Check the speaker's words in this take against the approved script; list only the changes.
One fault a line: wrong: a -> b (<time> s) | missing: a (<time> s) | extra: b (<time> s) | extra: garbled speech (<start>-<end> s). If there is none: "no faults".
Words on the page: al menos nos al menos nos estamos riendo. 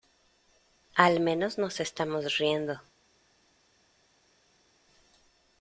missing: al menos nos (1.8 s)